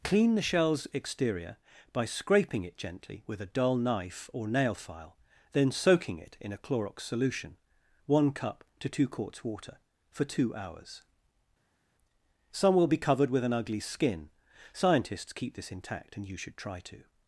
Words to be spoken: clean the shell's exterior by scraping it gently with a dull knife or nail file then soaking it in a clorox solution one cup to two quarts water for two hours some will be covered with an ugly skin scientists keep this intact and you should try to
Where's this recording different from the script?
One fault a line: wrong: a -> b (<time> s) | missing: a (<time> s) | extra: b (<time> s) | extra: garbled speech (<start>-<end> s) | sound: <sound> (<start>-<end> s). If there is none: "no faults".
no faults